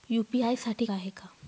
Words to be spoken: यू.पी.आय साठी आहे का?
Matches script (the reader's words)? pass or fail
pass